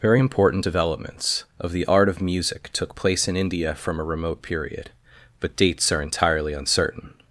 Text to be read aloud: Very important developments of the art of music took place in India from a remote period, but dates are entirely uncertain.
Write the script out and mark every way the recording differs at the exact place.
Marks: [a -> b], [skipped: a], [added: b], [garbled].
Very important developments of the art of music took place in India from a remote period, but dates are entirely uncertain.